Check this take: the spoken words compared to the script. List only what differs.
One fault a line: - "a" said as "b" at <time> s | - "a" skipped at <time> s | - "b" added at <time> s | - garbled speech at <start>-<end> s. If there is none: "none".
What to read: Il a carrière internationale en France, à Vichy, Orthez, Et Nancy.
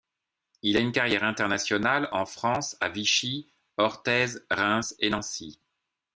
- "une" added at 0.8 s
- "Reims" added at 4.5 s